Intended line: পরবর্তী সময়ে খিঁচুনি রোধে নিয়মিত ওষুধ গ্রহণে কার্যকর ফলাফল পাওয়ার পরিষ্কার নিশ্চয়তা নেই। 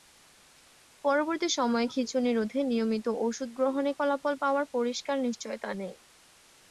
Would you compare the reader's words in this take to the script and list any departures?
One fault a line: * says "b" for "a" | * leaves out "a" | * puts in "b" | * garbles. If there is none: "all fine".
* leaves out "কার্যকর"